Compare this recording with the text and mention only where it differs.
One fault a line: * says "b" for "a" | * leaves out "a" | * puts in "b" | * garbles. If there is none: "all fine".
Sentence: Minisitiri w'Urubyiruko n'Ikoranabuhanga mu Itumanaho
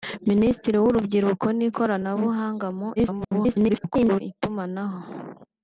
* garbles